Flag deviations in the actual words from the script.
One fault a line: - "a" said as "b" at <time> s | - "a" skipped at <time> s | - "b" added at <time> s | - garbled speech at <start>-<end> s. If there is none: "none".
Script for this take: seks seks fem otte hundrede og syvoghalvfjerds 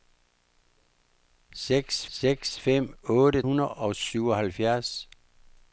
none